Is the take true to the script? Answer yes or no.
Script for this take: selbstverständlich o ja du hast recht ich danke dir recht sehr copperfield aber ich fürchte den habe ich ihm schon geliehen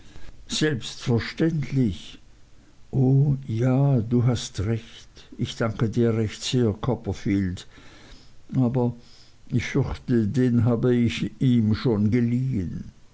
yes